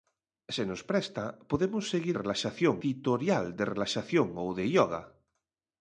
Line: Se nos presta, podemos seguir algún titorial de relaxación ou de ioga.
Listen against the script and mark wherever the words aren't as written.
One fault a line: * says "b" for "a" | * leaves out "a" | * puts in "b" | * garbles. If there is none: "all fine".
* says "relaxación" for "algún"